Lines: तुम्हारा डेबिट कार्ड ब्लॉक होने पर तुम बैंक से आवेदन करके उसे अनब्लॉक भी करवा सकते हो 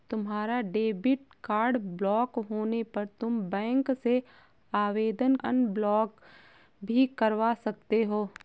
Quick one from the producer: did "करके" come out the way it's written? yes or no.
no